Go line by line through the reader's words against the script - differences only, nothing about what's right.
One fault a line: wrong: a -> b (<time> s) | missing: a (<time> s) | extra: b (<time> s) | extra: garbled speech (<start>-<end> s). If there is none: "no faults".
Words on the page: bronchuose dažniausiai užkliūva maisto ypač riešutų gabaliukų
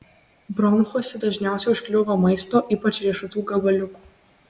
no faults